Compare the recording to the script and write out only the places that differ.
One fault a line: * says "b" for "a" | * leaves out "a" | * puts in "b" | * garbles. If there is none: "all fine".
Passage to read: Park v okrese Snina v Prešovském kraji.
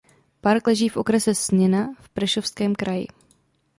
* puts in "leží"